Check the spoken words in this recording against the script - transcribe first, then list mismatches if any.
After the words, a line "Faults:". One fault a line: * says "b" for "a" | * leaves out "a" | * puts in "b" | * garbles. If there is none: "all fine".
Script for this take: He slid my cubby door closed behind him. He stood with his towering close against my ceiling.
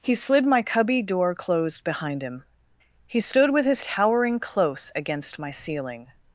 He slid my cubby door closed behind him. He stood with his towering close against my ceiling.
Faults:
all fine